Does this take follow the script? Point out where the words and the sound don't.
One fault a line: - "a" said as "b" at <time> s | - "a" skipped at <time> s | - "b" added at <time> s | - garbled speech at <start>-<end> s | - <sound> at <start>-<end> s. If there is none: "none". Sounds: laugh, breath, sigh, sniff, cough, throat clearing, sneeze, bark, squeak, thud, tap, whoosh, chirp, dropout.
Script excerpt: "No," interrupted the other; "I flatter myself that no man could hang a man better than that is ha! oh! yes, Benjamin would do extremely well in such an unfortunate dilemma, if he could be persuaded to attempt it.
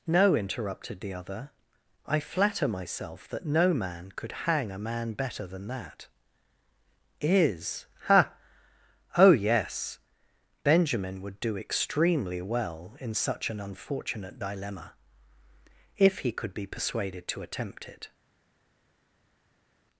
none